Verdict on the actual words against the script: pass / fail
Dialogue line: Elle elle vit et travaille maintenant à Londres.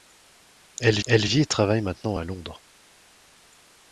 pass